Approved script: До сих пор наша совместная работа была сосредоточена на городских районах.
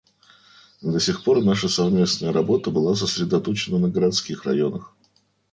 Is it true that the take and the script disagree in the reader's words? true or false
false